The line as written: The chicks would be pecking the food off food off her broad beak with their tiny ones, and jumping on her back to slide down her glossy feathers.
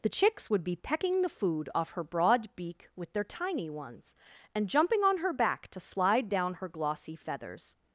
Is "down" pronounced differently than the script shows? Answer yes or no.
no